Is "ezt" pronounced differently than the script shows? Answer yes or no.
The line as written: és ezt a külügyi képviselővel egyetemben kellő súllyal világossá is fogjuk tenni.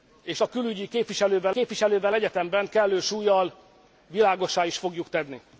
yes